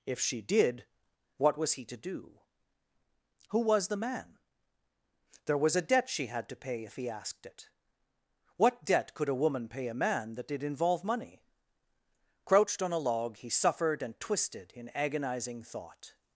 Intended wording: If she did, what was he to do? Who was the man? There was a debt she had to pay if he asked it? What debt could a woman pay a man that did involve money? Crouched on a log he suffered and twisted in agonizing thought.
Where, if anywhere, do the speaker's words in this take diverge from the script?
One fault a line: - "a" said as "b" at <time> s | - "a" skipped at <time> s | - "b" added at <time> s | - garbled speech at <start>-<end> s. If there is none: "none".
none